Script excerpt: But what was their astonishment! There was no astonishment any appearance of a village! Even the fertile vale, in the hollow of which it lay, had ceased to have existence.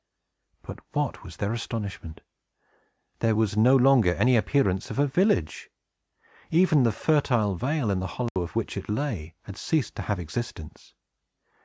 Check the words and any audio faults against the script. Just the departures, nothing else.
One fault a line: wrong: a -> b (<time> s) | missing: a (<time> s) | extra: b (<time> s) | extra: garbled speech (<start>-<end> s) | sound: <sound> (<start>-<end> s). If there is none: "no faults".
wrong: astonishment -> longer (3.8 s)
sound: dropout (8.3-8.4 s)